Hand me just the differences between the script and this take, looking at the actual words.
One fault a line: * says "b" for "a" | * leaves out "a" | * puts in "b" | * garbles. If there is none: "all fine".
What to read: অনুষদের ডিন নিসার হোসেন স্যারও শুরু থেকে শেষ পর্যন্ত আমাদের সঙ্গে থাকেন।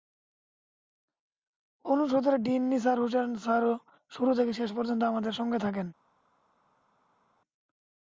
all fine